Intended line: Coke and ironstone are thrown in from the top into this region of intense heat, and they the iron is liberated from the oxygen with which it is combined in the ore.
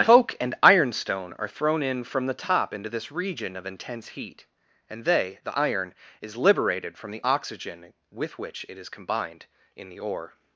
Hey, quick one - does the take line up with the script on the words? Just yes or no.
yes